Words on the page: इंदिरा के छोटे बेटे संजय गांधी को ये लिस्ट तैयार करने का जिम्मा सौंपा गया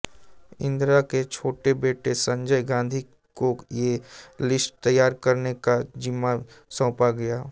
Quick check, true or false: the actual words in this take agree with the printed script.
true